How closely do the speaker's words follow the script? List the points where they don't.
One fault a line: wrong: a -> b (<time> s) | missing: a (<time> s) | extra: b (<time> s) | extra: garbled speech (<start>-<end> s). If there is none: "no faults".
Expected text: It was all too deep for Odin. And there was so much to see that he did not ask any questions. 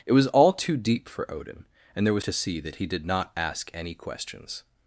missing: so much (2.2 s)